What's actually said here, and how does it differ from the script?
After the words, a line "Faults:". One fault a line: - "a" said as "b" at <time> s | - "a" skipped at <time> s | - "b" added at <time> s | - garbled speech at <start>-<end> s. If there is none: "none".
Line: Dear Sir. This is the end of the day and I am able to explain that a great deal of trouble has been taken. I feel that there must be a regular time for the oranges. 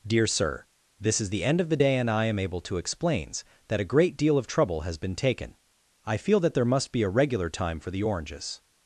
Dear Sir. This is the end of the day and I am able to explains that a great deal of trouble has been taken. I feel that there must be a regular time for the oranges.
Faults:
- "explain" said as "explains" at 2.8 s